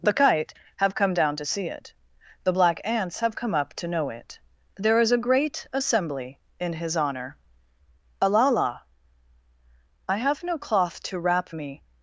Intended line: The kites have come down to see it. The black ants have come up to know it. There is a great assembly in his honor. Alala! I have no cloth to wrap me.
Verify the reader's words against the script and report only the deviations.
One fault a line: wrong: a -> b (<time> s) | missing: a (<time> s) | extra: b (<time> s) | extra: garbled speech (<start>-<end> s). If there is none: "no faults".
wrong: kites -> kite (0.1 s)